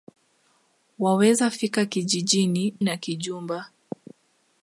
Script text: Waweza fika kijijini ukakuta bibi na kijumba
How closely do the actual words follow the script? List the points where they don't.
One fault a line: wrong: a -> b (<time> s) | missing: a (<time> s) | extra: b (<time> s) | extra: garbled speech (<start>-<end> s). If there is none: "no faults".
missing: ukakuta bibi (2.8 s)